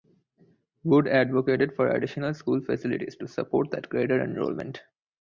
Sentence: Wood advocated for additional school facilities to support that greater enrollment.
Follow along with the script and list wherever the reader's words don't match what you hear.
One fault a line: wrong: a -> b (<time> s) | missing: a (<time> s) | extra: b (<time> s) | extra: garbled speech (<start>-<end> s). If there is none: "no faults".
no faults